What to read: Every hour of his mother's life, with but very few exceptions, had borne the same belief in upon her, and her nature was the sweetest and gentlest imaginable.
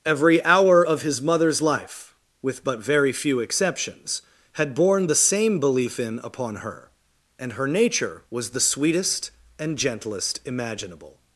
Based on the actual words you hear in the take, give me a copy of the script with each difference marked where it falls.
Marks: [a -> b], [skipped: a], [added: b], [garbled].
Every hour of his mother's life, with but very few exceptions, had borne the same belief in upon her, and her nature was the sweetest and gentlest imaginable.